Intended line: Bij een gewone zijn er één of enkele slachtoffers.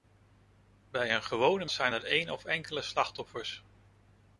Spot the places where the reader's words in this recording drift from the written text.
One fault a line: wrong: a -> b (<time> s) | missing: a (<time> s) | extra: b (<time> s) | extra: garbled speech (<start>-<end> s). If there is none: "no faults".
no faults